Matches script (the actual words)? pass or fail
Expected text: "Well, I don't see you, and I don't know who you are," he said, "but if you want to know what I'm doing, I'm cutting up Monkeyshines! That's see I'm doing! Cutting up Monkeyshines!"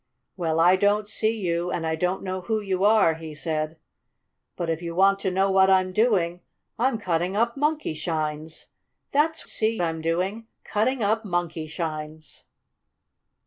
pass